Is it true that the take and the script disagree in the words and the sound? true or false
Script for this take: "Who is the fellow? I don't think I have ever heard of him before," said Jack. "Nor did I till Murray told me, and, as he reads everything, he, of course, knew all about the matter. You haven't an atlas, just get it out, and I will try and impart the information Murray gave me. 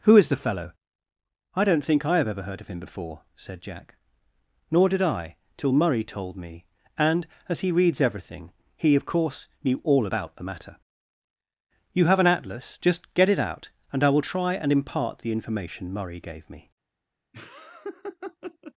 true